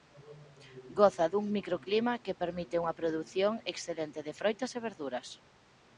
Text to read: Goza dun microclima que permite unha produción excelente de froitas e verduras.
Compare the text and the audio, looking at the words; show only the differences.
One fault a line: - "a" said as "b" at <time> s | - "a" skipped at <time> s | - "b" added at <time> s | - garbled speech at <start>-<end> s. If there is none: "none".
none